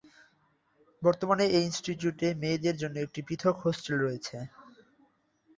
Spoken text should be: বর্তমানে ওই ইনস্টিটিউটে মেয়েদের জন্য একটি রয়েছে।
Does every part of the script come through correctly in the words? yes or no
no